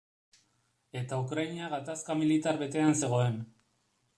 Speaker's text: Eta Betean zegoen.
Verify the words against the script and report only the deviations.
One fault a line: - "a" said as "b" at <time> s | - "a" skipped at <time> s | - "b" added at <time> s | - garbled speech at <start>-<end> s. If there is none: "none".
- "Ukraina gatazka militar" added at 1.2 s